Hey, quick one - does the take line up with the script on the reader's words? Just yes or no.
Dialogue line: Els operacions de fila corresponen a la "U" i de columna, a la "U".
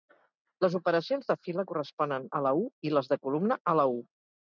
no